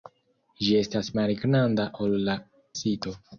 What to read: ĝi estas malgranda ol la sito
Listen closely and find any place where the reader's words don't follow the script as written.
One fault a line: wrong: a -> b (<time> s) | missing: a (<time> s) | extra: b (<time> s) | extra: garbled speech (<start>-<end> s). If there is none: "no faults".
no faults